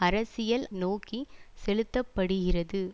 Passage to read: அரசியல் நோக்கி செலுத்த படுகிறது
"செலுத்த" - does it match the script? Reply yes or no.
yes